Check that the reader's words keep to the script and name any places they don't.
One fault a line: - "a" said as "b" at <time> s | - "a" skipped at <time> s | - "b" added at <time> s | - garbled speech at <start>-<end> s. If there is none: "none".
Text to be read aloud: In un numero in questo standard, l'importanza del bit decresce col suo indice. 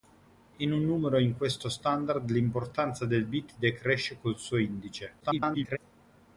- garbled speech at 5.2-5.8 s